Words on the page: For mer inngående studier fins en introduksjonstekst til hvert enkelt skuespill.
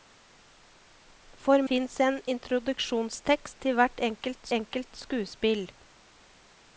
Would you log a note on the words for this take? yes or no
yes